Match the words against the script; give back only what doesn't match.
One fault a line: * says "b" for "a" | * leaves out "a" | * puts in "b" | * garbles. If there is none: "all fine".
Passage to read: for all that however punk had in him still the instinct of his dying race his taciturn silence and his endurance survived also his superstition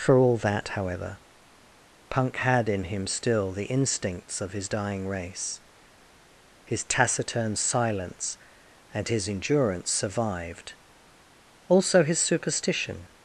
* says "instincts" for "instinct"